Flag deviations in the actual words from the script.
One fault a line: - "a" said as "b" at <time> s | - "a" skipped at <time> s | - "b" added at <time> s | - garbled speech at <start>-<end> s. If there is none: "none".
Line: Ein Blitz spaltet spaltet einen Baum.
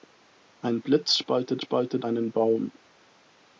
none